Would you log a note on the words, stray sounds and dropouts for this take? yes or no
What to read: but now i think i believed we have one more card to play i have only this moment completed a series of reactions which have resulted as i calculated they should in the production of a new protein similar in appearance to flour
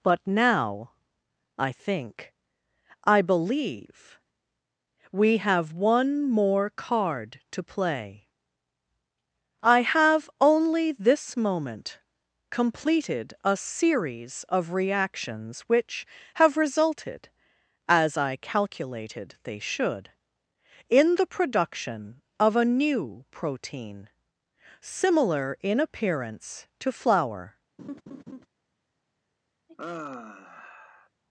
yes